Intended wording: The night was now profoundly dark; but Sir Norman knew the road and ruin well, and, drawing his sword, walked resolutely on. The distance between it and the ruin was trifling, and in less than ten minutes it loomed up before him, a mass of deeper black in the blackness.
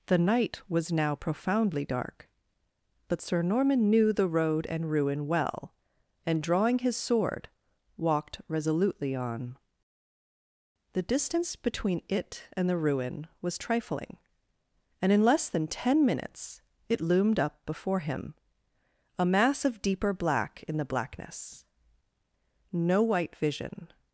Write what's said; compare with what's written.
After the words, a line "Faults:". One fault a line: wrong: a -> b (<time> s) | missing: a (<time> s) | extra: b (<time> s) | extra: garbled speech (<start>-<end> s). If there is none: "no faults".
The night was now profoundly dark; but Sir Norman knew the road and ruin well, and, drawing his sword, walked resolutely on. The distance between it and the ruin was trifling, and in less than ten minutes it loomed up before him, a mass of deeper black in the blackness. No white vision
Faults:
extra: No white vision (22.7 s)